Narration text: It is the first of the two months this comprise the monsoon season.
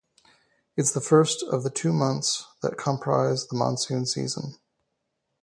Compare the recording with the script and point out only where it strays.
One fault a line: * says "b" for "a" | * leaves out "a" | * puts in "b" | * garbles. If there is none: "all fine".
* says "that" for "this"